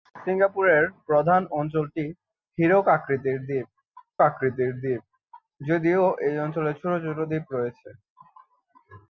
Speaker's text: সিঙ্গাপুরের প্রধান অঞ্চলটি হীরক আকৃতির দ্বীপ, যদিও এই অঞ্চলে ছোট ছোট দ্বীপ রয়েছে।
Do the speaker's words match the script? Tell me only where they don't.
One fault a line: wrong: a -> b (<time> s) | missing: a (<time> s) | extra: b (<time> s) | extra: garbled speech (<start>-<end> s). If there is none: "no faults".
extra: আকৃতির দ্বীপ (4.3 s)